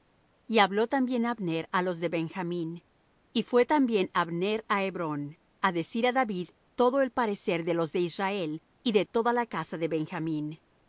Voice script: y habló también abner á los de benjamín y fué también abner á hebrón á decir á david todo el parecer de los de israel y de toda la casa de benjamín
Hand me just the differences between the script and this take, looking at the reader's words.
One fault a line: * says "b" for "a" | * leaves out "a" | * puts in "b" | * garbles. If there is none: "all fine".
all fine